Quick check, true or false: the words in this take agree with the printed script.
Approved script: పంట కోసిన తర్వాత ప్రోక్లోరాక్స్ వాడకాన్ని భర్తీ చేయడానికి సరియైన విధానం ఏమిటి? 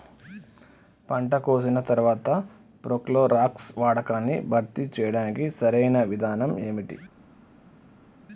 true